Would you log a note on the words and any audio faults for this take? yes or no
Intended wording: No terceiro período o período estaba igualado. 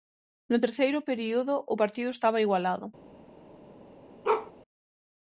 yes